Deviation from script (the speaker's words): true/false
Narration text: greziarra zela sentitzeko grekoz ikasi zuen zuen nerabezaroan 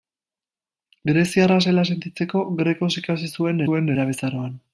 false